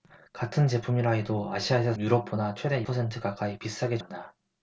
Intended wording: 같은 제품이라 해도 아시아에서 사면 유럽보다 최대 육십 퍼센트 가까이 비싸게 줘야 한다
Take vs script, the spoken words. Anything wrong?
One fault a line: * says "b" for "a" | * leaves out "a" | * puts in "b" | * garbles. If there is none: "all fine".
* leaves out "사면"
* leaves out "육십"
* leaves out "줘야"